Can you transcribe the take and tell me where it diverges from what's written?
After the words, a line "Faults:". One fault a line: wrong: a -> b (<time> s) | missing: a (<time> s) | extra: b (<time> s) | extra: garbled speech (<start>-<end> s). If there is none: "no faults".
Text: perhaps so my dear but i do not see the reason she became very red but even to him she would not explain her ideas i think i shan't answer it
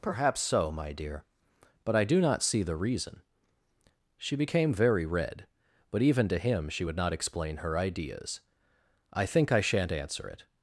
perhaps so my dear but i do not see the reason she became very red but even to him she would not explain her ideas i think i shan't answer it
Faults:
no faults